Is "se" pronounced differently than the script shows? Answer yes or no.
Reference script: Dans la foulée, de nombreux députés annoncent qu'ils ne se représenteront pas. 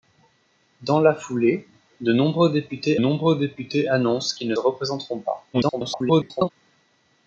yes